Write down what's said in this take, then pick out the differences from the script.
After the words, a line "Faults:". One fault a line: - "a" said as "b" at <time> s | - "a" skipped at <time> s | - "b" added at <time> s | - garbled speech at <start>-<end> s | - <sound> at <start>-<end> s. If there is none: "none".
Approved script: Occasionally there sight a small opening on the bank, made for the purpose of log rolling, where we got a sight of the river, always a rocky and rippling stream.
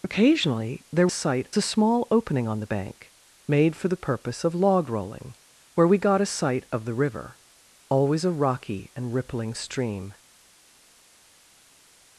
Occasionally there sight a small opening on the bank, made for the purpose of log rolling, where we got a sight of the river, always a rocky and rippling stream.
Faults:
none